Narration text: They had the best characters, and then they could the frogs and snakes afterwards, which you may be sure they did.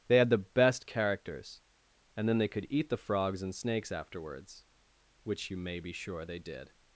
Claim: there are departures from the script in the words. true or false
true